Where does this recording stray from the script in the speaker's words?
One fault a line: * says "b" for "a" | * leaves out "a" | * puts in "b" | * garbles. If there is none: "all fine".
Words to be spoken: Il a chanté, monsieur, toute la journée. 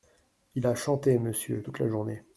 all fine